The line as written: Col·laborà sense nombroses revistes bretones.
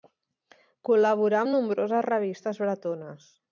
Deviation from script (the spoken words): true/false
true